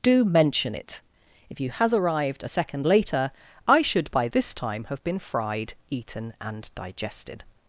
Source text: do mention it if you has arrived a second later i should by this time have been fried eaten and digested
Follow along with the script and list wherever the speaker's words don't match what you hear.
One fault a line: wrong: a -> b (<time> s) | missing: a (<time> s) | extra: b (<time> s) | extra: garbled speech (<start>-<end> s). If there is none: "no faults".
no faults